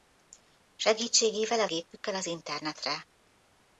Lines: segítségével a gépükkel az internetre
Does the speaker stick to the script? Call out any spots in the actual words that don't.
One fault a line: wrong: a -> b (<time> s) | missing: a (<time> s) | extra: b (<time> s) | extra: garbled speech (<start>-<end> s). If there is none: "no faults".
no faults